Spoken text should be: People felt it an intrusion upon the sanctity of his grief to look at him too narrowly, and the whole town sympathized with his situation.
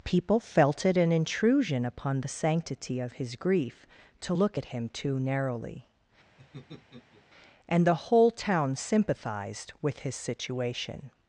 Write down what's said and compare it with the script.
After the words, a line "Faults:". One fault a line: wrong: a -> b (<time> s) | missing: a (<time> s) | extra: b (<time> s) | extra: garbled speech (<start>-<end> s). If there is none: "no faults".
People felt it an intrusion upon the sanctity of his grief to look at him too narrowly, and the whole town sympathized with his situation.
Faults:
no faults